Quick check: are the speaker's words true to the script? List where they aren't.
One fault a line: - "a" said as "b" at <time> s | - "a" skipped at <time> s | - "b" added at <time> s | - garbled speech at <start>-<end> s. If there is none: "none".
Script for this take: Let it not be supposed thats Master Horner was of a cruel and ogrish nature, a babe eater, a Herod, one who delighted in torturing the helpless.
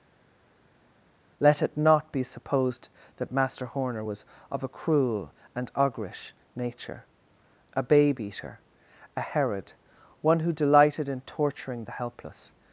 - "thats" said as "that" at 3.2 s